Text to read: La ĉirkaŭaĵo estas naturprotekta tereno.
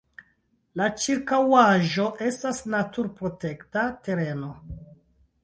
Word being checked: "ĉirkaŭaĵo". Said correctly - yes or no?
yes